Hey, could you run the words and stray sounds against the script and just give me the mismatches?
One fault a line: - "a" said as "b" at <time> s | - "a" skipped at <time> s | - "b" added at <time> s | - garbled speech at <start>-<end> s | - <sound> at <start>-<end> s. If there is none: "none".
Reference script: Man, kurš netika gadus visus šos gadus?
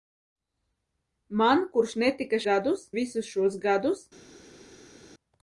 none